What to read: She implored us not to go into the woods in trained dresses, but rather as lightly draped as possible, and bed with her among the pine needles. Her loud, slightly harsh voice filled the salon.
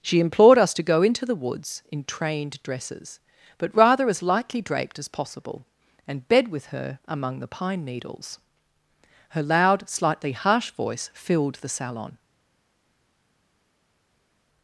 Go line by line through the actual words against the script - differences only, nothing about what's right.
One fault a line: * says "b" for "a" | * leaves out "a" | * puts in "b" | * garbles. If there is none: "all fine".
* leaves out "not"